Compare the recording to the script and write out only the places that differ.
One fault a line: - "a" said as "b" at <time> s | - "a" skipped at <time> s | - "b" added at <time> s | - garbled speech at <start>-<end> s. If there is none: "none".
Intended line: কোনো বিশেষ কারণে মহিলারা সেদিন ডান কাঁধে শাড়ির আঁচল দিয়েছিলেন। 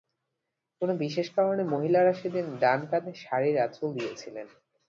none